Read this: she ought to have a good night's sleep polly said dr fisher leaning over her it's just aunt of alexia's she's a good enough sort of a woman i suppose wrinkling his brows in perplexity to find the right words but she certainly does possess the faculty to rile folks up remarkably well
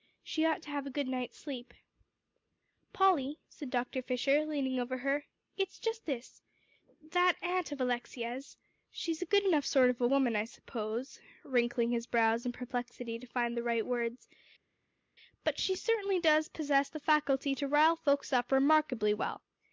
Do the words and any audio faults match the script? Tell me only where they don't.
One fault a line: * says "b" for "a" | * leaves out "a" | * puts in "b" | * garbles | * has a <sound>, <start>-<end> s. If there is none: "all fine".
* puts in "this that"